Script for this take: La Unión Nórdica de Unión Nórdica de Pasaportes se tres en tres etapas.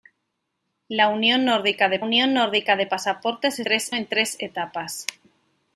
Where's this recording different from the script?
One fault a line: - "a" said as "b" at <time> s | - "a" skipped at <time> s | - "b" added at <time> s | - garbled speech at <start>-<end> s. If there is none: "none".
none